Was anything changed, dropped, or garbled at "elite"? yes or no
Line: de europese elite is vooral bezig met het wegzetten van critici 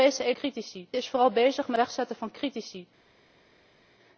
yes